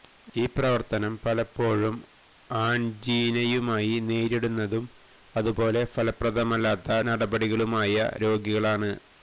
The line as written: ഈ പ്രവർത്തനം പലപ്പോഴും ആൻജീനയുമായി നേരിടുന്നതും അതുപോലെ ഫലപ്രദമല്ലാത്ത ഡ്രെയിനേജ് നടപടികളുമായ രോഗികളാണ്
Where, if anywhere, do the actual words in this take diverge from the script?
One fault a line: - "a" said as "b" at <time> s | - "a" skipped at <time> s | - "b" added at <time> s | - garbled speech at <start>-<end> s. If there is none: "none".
- "ഡ്രെയിനേജ്" skipped at 7.0 s